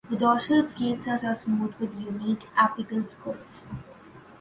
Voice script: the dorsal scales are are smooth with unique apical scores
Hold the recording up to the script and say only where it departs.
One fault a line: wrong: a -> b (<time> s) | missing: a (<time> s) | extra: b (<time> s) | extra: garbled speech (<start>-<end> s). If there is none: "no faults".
no faults